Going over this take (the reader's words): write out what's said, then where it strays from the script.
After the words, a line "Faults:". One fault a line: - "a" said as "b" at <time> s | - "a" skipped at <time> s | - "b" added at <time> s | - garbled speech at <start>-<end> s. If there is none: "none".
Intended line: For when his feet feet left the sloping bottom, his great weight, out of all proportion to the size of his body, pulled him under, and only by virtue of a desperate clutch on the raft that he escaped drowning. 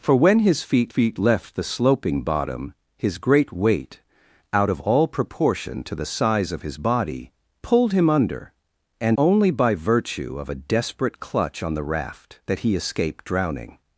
For when his feet feet left the sloping bottom, his great weight, out of all proportion to the size of his body, pulled him under, and only by virtue of a desperate clutch on the raft that he escaped drowning.
Faults:
none